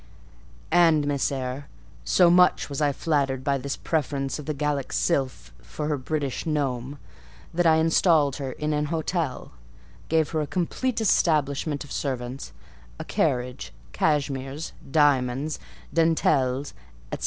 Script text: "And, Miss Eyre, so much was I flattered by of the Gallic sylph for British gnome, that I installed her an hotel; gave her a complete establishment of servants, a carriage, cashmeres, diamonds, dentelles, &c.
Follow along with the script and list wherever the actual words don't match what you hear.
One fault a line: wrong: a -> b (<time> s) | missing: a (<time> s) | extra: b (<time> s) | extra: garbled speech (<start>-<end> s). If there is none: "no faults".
extra: this preference (3.6 s)
extra: her (5.9 s)
extra: in (8.5 s)